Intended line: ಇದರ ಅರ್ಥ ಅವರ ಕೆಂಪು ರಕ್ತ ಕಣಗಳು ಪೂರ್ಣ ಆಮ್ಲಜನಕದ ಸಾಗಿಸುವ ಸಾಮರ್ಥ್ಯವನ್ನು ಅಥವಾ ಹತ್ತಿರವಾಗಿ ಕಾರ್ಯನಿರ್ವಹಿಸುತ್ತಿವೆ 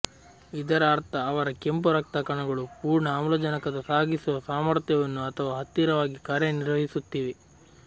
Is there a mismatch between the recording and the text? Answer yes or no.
no